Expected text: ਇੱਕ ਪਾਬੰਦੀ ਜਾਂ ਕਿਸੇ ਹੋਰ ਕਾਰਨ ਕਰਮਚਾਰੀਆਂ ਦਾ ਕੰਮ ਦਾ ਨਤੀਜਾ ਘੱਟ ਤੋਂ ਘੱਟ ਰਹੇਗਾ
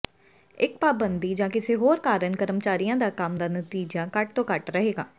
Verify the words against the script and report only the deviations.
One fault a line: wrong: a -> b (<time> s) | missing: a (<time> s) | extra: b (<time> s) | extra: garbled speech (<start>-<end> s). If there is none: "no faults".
no faults